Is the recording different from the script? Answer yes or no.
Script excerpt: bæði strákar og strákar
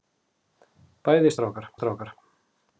no